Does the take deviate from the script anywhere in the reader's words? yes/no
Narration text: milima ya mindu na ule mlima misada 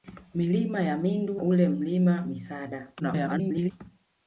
yes